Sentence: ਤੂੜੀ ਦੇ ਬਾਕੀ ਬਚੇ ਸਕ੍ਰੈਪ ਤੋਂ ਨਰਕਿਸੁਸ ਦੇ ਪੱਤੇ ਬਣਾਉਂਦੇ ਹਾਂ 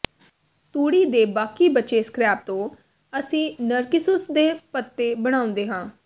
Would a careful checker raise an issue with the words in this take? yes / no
yes